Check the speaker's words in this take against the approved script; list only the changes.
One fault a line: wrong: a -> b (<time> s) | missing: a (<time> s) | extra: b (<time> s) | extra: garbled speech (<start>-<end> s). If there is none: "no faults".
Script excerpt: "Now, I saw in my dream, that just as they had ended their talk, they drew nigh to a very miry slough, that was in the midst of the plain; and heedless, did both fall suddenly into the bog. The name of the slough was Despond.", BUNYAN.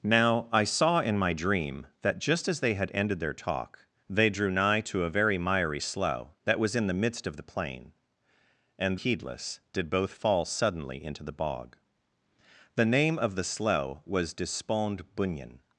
no faults